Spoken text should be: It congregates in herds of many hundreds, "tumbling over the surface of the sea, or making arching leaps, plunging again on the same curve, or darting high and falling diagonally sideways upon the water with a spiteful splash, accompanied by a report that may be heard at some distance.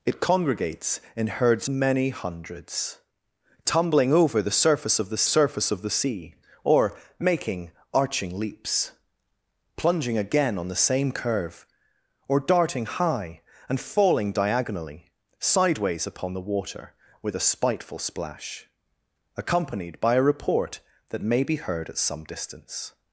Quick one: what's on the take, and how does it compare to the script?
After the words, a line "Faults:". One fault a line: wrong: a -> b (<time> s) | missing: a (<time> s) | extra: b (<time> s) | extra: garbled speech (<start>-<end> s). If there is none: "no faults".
It congregates in herds many hundreds, "tumbling over the surface of the surface of the sea, or making arching leaps, plunging again on the same curve, or darting high and falling diagonally sideways upon the water with a spiteful splash, accompanied by a report that may be heard at some distance.
Faults:
missing: of (1.7 s)
extra: surface of the (5.3 s)